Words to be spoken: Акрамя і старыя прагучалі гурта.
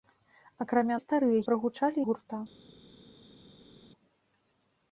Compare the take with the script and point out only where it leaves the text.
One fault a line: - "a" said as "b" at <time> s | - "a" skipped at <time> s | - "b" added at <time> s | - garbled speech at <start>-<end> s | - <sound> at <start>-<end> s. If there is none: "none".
none